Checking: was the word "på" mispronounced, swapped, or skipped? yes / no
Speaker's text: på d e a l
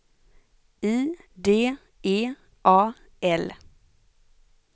yes